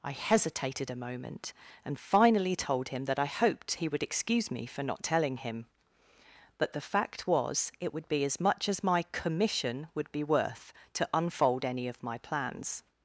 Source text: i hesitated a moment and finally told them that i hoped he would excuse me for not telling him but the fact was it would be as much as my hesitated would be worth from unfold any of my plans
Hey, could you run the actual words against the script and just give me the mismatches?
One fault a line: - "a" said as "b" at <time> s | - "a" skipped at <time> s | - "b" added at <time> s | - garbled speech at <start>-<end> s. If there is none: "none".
- "them" said as "him" at 2.9 s
- "hesitated" said as "commission" at 9.1 s
- "from" said as "to" at 10.9 s